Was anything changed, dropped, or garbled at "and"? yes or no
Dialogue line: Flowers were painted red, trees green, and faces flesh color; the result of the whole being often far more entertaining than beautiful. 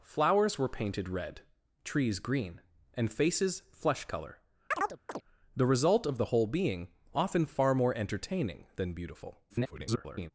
no